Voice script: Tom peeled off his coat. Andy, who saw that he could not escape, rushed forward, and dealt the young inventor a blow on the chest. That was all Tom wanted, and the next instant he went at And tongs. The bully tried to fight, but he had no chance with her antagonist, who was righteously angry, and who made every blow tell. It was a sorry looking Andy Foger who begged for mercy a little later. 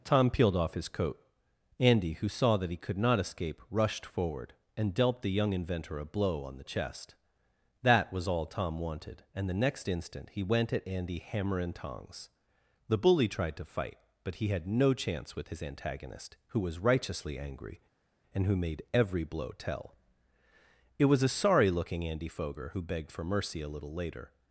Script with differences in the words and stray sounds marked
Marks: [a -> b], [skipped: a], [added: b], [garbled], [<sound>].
Tom peeled off his coat. Andy, who saw that he could not escape, rushed forward, and dealt the young inventor a blow on the chest. That was all Tom wanted, and the next instant he went at [added: Andy hammer] And tongs. The bully tried to fight, but he had no chance with [her -> his] antagonist, who was righteously angry, and who made every blow tell. It was a sorry looking Andy Foger who begged for mercy a little later.